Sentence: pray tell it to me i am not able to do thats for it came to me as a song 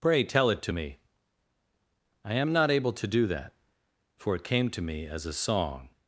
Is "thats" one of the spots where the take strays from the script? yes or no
yes